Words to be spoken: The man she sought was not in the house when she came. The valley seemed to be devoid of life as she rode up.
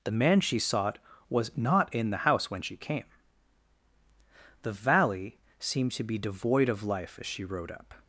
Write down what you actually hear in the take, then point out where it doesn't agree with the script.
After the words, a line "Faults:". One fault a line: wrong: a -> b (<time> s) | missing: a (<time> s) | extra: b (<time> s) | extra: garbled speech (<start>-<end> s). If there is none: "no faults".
The man she sought was not in the house when she came. The valley seemed to be devoid of life as she rode up.
Faults:
no faults